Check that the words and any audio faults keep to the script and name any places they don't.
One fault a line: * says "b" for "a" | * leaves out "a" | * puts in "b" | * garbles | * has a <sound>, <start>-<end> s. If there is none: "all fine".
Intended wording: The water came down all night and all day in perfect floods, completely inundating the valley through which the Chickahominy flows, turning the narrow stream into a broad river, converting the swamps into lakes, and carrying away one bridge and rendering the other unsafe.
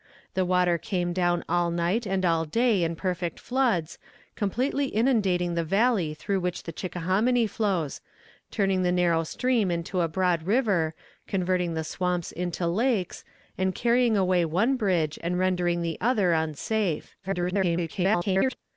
* garbles